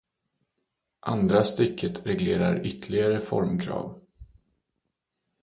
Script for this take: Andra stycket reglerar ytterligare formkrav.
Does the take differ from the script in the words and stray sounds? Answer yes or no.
no